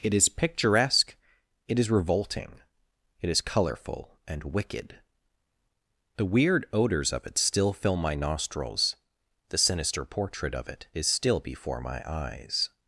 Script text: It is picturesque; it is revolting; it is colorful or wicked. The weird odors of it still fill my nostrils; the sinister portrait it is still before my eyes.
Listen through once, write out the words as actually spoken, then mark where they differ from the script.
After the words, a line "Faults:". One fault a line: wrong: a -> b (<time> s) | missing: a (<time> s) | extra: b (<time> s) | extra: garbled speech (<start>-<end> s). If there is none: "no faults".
It is picturesque; it is revolting; it is colorful and wicked. The weird odors of it still fill my nostrils; the sinister portrait of it is still before my eyes.
Faults:
wrong: or -> and (4.3 s)
extra: of (10.6 s)